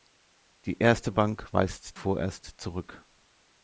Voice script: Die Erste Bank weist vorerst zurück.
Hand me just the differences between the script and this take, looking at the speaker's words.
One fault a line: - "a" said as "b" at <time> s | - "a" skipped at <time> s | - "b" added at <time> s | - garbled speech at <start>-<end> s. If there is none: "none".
none